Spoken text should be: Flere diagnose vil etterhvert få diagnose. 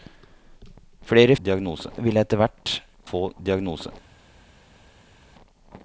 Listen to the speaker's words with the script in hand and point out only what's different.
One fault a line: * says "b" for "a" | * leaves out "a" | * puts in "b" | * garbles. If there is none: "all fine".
all fine